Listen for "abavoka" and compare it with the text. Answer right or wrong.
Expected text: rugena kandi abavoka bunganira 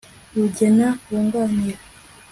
wrong